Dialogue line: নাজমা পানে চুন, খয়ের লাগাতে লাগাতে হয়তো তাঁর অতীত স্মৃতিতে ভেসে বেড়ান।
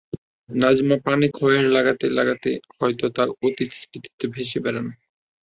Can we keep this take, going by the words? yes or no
no